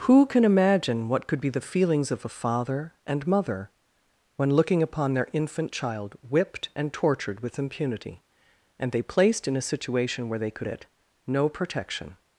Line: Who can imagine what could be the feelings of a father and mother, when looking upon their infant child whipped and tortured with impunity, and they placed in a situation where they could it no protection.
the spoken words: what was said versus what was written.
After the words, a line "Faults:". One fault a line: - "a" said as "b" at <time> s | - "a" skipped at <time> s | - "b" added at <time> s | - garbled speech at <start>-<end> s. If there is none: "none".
Who can imagine what could be the feelings of a father and mother, when looking upon their infant child whipped and tortured with impunity, and they placed in a situation where they could it no protection.
Faults:
none